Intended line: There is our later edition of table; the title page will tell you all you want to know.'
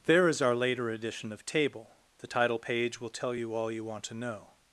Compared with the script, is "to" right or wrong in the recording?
right